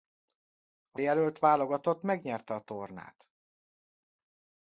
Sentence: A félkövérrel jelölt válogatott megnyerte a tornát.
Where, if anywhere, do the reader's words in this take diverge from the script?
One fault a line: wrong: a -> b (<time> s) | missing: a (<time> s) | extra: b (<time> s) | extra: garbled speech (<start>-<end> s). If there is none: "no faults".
missing: félkövérrel (1.0 s)